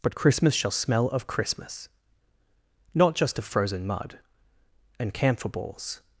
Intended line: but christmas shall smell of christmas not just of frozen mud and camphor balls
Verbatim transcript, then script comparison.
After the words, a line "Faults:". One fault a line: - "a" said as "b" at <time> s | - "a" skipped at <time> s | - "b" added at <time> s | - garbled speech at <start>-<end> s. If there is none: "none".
but christmas shall smell of christmas not just of frozen mud and camphor balls
Faults:
none